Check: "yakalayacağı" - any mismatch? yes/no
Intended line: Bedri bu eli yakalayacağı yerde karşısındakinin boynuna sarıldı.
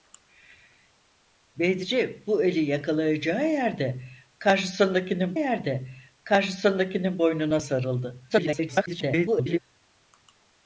no